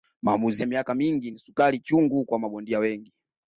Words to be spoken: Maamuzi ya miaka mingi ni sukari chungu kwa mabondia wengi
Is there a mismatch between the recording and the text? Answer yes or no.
no